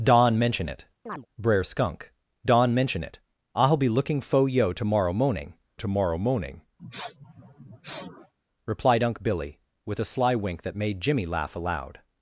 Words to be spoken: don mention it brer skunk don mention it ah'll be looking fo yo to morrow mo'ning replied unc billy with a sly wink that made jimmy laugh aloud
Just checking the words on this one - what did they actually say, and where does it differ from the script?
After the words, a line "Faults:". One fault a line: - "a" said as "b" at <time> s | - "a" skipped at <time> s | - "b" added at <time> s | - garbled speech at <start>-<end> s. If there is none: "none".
don mention it brer skunk don mention it ah'll be looking fo yo to morrow mo'ning to morrow mo'ning replied unc billy with a sly wink that made jimmy laugh aloud
Faults:
- "to morrow mo'ning" added at 5.7 s